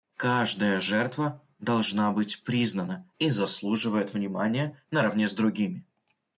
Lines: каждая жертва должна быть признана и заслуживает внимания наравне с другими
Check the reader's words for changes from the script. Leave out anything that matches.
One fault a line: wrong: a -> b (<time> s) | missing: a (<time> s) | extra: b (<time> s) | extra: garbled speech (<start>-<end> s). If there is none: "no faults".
no faults